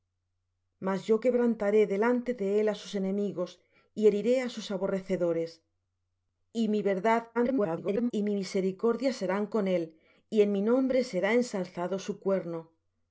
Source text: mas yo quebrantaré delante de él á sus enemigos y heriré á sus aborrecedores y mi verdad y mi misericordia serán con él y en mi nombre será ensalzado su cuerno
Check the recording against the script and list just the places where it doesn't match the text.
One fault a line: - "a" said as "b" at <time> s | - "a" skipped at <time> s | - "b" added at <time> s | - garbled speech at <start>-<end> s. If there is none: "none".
- garbled speech at 7.3-8.1 s